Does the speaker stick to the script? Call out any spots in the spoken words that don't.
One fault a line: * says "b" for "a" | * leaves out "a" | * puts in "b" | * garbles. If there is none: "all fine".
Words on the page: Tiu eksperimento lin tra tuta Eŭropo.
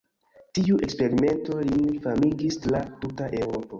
* puts in "famigis"